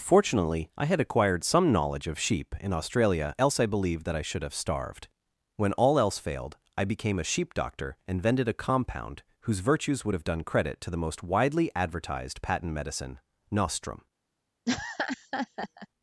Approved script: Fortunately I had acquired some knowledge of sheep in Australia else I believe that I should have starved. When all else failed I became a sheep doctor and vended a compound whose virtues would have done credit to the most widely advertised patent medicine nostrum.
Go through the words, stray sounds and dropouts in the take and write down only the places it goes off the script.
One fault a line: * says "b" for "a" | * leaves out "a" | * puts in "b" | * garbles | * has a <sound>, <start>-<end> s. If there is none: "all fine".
* has a laugh, 14.7-15.9 s